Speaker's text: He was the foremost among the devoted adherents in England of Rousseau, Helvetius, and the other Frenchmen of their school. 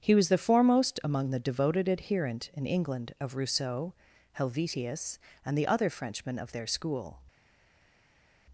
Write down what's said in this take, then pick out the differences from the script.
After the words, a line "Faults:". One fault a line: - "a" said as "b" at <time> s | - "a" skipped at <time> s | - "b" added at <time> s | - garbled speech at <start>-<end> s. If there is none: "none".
He was the foremost among the devoted adherent in England of Rousseau, Helvetius, and the other Frenchmen of their school.
Faults:
- "adherents" said as "adherent" at 1.9 s